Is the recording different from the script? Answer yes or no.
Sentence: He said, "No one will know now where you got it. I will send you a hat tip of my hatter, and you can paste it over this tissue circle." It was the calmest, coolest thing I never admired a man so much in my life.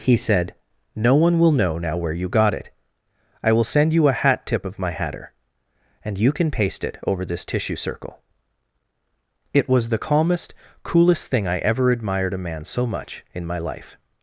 yes